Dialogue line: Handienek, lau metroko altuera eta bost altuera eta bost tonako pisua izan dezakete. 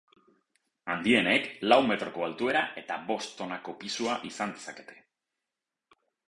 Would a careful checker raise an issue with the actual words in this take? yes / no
yes